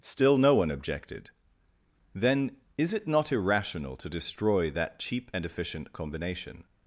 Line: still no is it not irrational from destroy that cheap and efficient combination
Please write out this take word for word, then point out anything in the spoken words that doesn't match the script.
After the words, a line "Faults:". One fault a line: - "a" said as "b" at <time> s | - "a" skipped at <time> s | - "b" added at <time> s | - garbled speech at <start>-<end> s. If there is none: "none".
still no one objected then is it not irrational to destroy that cheap and efficient combination
Faults:
- "one objected then" added at 0.6 s
- "from" said as "to" at 4.0 s